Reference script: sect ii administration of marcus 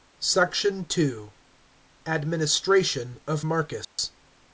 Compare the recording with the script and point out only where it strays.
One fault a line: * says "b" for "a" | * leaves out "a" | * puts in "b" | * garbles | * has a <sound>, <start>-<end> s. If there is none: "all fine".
* has a dropout, 3.8-4.0 s